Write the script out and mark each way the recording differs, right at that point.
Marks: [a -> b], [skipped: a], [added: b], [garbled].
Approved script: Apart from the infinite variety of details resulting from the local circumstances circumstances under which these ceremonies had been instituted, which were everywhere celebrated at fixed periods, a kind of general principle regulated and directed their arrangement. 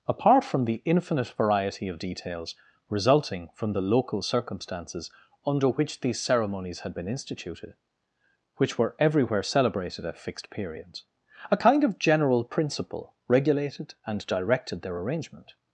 Apart from the infinite variety of details resulting from the local circumstances [skipped: circumstances] under which these ceremonies had been instituted, which were everywhere celebrated at fixed periods, a kind of general principle regulated and directed their arrangement.